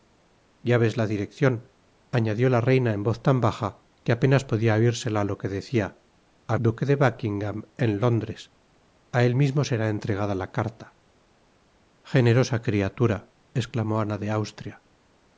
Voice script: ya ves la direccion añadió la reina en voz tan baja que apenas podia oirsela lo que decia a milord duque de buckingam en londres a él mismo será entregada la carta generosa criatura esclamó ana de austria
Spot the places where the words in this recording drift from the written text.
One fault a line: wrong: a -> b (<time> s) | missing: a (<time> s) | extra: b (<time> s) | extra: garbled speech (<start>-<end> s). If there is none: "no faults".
missing: milord (6.6 s)